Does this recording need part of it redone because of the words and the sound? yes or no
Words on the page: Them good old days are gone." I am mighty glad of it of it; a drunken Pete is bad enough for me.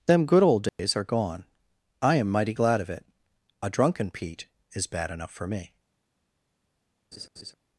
yes